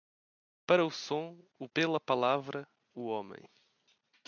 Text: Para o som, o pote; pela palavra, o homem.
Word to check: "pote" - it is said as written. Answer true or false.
false